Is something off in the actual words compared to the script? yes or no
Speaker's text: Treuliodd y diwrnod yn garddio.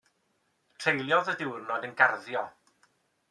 no